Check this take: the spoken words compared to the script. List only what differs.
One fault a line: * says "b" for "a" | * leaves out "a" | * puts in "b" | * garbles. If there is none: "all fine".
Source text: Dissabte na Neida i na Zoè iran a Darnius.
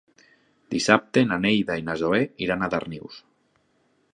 all fine